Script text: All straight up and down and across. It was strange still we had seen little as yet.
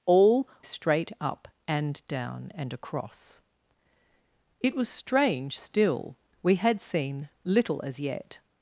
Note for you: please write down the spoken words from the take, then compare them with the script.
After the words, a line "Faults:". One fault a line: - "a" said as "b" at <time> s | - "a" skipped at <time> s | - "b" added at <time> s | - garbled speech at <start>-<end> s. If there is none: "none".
All straight up and down and across. It was strange still we had seen little as yet.
Faults:
none